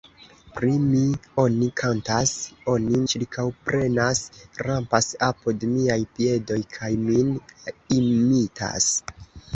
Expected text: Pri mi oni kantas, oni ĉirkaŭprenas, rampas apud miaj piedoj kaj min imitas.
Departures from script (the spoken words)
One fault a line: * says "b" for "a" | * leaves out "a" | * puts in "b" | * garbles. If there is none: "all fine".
all fine